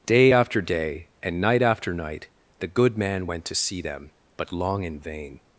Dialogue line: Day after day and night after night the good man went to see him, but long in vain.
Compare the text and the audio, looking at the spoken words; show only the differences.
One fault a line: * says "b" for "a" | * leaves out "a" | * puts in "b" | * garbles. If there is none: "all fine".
* says "them" for "him"